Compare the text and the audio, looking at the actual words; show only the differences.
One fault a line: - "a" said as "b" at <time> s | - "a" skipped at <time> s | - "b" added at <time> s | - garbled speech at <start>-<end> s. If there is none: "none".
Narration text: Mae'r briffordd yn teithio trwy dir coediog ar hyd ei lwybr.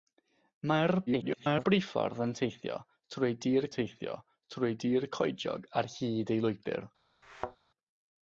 - garbled speech at 1.1-1.7 s
- "teithio trwy dir" added at 3.7 s